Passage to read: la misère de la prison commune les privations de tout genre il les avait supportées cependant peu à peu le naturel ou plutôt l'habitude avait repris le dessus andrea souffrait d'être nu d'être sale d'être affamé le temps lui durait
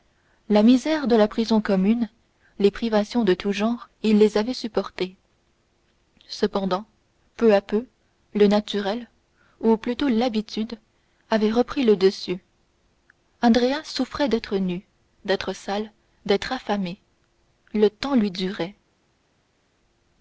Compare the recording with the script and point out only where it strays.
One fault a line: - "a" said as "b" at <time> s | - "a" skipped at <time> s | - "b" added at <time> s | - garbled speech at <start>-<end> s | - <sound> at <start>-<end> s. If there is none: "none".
none